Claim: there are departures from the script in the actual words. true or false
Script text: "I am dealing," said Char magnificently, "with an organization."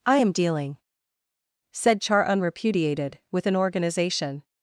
true